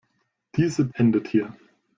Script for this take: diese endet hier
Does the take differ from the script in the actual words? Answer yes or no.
no